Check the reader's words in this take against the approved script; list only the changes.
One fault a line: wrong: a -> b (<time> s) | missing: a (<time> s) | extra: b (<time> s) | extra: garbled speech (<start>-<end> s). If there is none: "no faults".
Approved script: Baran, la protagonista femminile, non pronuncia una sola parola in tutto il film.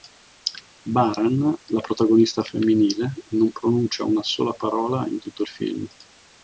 no faults